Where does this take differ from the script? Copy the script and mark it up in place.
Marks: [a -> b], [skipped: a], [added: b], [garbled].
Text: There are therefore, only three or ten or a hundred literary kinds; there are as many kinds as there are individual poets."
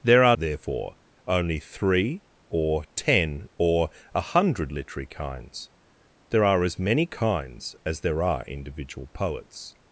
There are therefore, only three or ten or a hundred literary kinds; there are as many kinds as there are individual poets."